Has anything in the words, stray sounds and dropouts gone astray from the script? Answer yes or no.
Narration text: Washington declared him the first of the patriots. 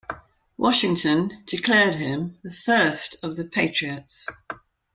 no